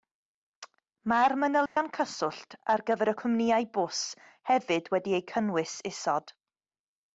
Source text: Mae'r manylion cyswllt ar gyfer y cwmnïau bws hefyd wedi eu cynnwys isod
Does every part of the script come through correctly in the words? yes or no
yes